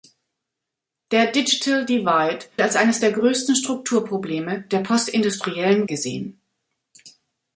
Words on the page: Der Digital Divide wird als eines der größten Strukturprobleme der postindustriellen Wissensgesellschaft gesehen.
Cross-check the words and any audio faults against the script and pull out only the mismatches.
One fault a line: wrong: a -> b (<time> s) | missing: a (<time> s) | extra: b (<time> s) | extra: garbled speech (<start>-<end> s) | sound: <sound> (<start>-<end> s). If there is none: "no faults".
missing: wird (2.5 s)
missing: Wissensgesellschaft (5.9 s)